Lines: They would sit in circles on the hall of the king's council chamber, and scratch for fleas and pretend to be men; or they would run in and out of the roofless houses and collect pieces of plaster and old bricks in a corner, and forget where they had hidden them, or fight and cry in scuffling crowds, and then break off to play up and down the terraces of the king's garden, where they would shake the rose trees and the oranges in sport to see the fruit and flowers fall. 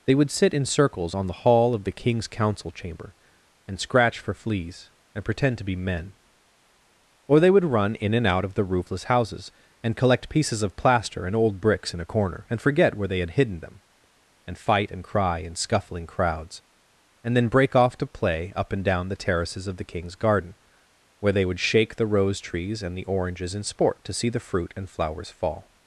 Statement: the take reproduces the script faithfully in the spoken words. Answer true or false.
false